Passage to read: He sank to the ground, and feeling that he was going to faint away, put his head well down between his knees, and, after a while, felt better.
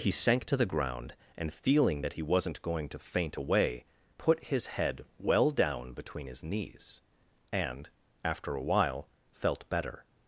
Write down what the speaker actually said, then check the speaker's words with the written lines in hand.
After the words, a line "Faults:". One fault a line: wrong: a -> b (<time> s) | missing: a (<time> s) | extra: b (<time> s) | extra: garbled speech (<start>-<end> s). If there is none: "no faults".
He sank to the ground, and feeling that he wasn't going to faint away, put his head well down between his knees, and, after a while, felt better.
Faults:
wrong: was -> wasn't (2.2 s)